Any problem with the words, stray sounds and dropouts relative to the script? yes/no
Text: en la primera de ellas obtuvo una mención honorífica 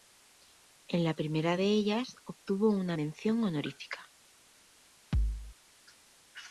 yes